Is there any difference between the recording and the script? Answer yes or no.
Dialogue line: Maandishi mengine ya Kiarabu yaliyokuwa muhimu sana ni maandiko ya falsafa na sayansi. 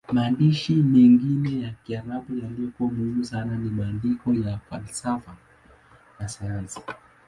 no